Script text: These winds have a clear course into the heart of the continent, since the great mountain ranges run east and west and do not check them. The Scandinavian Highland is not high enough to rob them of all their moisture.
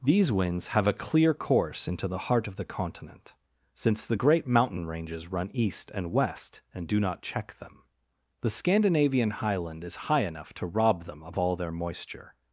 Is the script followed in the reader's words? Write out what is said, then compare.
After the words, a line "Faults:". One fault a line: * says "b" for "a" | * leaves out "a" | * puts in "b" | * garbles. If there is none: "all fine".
These winds have a clear course into the heart of the continent, since the great mountain ranges run east and west and do not check them. The Scandinavian Highland is high enough to rob them of all their moisture.
Faults:
* leaves out "not"